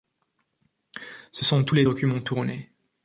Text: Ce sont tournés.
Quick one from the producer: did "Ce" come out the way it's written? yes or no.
yes